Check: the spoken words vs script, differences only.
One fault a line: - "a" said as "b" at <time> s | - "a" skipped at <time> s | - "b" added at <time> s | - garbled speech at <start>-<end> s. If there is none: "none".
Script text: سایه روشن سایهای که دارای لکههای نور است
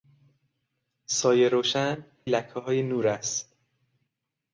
- "سایهای که دارای" skipped at 2.0 s